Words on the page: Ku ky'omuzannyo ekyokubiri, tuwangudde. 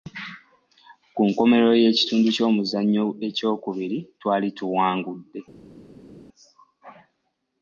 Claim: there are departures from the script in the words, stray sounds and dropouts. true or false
true